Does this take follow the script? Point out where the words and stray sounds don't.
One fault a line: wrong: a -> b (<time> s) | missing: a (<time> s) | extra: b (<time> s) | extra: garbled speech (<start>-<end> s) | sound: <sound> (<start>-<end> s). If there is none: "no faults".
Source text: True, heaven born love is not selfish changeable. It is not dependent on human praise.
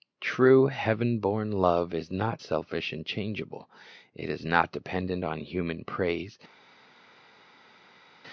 extra: and (2.9 s)